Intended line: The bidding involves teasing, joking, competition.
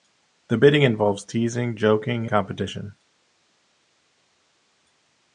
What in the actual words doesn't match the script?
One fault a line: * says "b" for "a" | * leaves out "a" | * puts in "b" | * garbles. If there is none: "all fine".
all fine